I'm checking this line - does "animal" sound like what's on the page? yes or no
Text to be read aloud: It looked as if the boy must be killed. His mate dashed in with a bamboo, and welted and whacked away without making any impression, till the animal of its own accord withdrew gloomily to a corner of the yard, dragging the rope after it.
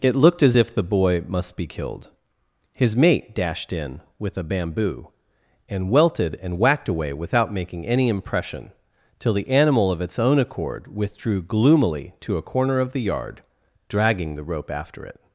yes